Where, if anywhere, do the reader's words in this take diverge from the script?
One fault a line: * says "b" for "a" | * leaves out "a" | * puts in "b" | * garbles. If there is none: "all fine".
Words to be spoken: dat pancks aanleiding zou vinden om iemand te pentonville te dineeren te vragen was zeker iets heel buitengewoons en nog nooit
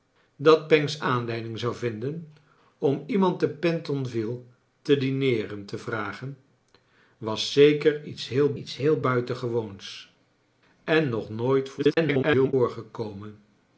* puts in "iets heel"
* garbles